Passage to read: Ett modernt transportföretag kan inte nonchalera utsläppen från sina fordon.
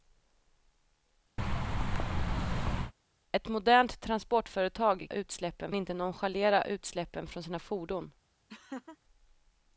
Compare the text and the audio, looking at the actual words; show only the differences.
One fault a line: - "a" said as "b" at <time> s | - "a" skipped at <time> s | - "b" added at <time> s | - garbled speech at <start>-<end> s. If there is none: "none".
- "kan" said as "utsläppen" at 5.1 s